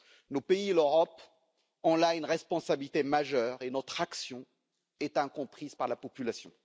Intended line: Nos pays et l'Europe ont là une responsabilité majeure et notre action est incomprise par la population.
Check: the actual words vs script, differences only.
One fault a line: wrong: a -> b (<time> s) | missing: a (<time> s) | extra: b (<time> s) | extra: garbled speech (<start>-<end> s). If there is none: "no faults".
no faults